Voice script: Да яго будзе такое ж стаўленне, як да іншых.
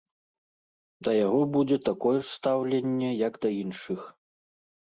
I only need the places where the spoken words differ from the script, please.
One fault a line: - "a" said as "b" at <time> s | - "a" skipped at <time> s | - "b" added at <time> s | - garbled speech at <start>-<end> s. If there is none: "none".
none